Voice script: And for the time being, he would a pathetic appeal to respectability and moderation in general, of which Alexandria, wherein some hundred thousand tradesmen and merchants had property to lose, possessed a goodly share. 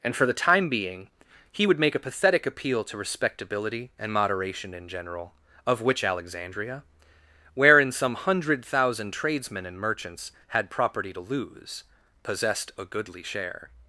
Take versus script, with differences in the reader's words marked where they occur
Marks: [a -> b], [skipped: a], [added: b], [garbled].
And for the time being, he would [added: make] a pathetic appeal to respectability and moderation in general, of which Alexandria, wherein some hundred thousand tradesmen and merchants had property to lose, possessed a goodly share.